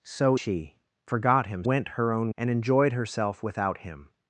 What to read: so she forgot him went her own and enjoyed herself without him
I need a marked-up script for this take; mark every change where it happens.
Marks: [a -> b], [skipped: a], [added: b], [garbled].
so she forgot him went her own and enjoyed herself without him